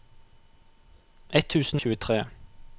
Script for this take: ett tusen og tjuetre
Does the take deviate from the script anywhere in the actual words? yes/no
no